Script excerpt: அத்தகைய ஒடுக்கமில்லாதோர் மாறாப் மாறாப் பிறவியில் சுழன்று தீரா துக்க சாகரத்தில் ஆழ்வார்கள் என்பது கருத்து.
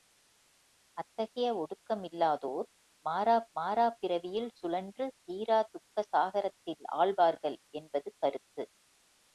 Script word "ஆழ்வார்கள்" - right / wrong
right